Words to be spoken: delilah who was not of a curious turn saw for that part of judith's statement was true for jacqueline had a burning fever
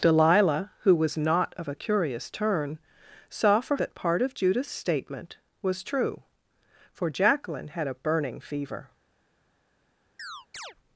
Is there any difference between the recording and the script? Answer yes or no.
no